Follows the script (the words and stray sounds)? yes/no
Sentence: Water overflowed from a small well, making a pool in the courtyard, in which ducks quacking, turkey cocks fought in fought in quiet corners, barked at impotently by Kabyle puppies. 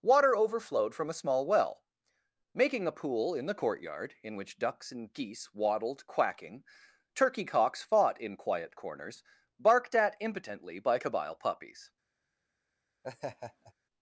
no